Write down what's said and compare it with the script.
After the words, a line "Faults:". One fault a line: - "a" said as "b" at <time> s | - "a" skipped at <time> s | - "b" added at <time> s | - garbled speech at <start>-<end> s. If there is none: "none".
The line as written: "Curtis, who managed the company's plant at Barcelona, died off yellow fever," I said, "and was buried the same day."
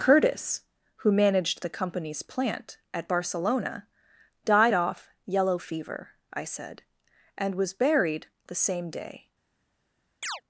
"Curtis, who managed the company's plant at Barcelona, died off yellow fever," I said, "and was buried the same day."
Faults:
none